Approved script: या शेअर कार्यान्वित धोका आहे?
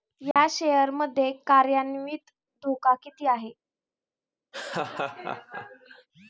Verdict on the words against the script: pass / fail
fail